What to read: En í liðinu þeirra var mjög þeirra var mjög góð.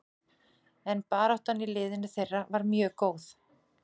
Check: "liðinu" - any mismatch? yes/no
no